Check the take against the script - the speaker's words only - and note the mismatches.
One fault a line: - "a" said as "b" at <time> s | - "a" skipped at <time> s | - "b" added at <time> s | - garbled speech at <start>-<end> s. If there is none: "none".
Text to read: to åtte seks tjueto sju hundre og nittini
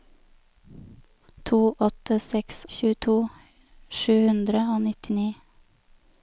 none